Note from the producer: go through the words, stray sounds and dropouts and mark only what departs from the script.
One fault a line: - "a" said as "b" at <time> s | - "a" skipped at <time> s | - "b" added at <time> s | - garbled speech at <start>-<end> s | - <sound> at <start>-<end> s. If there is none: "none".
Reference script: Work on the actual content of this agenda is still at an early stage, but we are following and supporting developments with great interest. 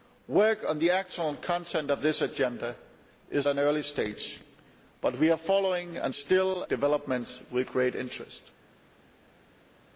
- "still at" skipped at 3.5 s
- "supporting" said as "still" at 6.1 s